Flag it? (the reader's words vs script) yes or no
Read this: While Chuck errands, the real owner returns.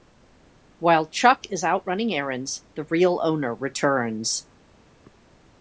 yes